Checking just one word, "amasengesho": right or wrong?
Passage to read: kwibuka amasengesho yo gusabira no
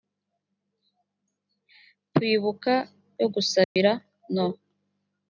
wrong